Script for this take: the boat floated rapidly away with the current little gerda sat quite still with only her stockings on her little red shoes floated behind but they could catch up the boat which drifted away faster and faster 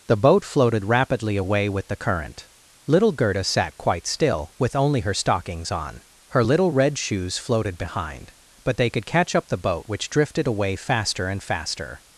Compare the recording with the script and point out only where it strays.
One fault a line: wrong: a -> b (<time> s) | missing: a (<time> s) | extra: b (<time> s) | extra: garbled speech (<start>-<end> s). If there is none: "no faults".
no faults